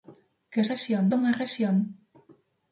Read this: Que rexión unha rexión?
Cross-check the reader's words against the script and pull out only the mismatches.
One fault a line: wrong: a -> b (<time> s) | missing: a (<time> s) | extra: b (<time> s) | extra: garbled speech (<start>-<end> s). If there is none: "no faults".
no faults